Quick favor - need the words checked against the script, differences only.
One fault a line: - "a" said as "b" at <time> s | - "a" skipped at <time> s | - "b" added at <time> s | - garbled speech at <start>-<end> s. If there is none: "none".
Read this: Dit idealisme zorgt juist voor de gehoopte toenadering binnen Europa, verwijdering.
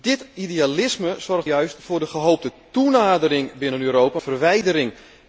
none